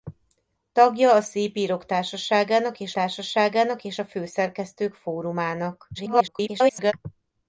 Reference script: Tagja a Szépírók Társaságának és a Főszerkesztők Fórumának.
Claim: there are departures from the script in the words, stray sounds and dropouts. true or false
true